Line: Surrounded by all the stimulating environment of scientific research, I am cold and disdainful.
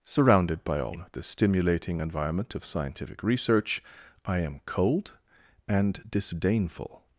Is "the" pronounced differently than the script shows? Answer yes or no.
no